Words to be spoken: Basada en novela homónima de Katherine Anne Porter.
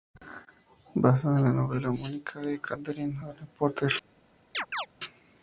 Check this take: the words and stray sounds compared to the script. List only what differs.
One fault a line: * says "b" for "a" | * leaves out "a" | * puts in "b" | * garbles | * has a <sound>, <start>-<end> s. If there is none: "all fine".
* puts in "la"
* has a chirp, 4.5-4.9 s